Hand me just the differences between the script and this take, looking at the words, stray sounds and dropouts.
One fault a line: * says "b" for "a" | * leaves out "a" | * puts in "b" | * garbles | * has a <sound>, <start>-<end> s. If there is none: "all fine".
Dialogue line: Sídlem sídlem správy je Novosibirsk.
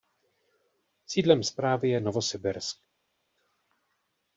* leaves out "sídlem"